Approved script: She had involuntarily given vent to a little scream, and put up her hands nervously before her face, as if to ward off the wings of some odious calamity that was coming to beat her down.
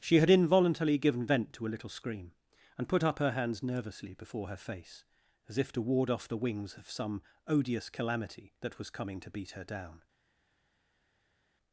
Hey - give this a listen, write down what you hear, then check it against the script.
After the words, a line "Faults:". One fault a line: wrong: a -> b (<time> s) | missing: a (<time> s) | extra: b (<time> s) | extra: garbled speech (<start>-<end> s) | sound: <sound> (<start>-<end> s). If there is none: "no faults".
She had involuntarily given vent to a little scream, and put up her hands nervously before her face, as if to ward off the wings of some odious calamity that was coming to beat her down.
Faults:
no faults